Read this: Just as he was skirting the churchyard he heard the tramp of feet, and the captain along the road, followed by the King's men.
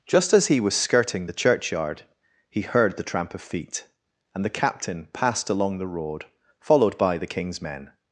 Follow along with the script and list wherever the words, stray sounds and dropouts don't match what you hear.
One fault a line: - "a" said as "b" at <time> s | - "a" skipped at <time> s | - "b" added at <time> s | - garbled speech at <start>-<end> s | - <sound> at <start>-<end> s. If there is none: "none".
- "passed" added at 5.1 s